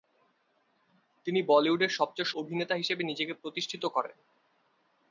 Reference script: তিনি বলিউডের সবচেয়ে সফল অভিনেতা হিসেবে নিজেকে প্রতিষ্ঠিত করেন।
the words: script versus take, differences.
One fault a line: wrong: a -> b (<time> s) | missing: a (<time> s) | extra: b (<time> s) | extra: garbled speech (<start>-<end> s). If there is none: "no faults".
missing: সফল (2.3 s)